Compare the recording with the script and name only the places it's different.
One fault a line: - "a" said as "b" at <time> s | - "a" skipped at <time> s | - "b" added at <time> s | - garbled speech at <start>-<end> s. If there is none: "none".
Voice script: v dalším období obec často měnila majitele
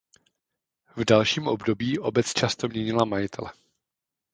none